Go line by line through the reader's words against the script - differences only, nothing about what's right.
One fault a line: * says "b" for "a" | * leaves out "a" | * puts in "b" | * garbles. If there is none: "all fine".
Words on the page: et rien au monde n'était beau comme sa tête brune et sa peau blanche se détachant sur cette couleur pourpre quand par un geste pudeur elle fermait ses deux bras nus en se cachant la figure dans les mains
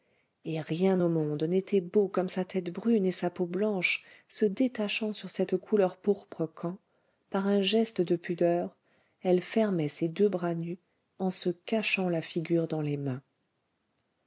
* puts in "de"